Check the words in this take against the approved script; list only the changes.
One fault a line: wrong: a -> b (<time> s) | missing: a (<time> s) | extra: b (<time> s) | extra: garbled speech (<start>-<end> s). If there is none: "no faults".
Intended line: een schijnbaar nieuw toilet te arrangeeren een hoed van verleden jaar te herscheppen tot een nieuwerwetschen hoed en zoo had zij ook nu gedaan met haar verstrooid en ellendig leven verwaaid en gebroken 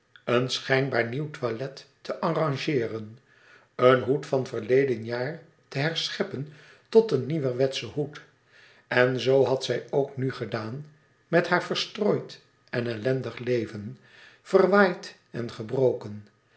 no faults